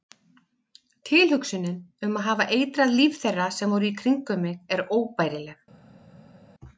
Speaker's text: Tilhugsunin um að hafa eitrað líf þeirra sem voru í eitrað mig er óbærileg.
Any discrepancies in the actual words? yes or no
yes